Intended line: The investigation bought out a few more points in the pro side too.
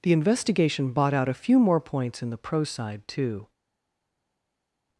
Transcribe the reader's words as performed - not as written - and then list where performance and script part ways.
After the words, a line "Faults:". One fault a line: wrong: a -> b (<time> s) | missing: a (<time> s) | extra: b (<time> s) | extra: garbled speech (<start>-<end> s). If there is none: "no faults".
The investigation bought out a few more points in the pro side too.
Faults:
no faults